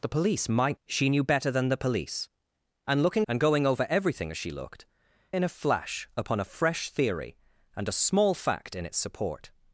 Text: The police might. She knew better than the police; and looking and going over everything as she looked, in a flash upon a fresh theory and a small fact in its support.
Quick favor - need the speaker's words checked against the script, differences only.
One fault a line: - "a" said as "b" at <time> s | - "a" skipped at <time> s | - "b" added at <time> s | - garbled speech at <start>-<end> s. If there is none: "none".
none